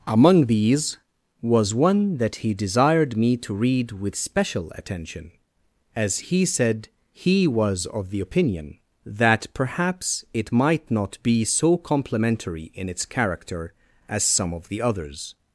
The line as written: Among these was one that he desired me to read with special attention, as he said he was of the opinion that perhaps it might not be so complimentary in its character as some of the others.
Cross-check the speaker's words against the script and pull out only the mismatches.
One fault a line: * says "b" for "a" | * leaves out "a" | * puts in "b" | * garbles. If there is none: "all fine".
all fine